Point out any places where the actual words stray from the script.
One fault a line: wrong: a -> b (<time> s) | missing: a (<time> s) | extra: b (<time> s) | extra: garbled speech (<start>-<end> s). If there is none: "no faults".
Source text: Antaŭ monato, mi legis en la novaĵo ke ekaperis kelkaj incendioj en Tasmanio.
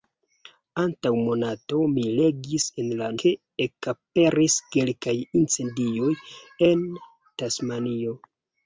missing: novaĵo (3.1 s)